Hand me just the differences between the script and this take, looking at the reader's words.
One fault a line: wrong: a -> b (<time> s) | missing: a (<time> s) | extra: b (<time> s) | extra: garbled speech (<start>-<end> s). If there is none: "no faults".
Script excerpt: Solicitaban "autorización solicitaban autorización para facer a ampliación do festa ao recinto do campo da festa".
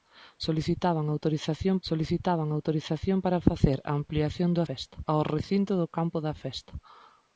no faults